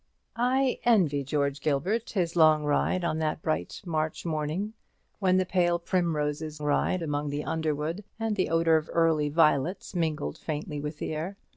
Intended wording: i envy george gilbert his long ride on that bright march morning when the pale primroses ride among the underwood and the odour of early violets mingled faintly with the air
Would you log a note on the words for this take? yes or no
no